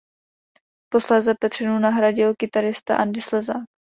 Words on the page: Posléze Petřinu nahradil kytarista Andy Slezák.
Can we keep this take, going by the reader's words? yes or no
yes